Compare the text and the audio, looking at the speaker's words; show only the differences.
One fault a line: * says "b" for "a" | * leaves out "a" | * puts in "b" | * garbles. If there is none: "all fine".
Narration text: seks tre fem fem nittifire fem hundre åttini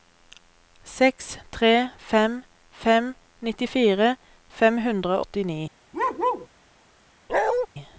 all fine